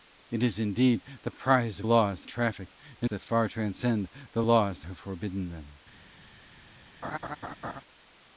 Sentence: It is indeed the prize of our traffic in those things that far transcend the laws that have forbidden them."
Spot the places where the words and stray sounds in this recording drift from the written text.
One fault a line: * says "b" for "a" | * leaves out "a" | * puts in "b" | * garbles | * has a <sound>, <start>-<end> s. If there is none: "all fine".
* says "laws" for "our"
* leaves out "those things"
* leaves out "that"
* has a laugh, 7.0-7.8 s